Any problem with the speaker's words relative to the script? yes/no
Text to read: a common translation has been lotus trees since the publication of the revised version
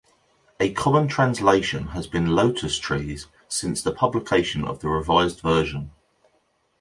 no